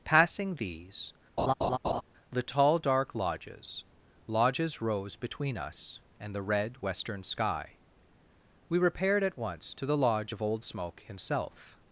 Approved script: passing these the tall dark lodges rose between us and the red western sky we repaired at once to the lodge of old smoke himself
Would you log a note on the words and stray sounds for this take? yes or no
yes